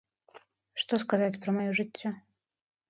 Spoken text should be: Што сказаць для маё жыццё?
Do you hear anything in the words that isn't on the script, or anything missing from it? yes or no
yes